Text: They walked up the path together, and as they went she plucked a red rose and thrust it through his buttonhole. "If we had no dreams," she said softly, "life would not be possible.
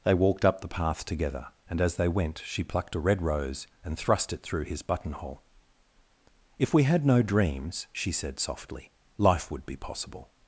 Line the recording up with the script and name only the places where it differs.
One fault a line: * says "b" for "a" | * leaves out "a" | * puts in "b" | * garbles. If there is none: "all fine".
* leaves out "not"